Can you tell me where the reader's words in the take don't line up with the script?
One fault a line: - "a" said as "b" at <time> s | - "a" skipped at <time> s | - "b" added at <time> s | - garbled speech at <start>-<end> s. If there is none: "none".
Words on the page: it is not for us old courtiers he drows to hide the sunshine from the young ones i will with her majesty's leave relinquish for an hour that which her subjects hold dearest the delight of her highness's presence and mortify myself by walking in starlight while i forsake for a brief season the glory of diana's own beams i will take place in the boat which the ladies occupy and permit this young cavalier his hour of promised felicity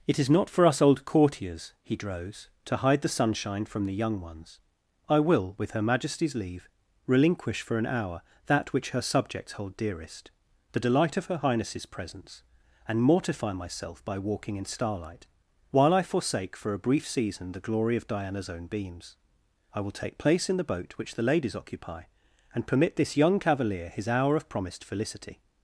none